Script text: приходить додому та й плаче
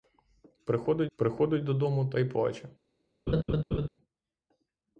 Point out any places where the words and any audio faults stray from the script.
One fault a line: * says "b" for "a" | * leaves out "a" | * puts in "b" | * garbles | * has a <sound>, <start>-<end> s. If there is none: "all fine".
* puts in "приходить"
* has a laugh, 3.3-3.9 s